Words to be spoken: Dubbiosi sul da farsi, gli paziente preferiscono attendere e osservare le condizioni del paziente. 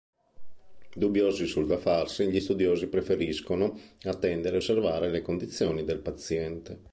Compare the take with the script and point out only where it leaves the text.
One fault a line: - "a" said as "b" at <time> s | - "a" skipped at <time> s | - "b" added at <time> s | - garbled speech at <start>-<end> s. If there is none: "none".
- "paziente" said as "studiosi" at 2.4 s